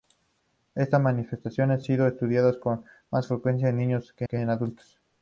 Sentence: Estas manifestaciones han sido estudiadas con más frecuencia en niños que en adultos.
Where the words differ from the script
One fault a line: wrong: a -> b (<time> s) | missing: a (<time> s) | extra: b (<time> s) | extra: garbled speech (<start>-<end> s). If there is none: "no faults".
missing: han (1.9 s)
extra: que (4.2 s)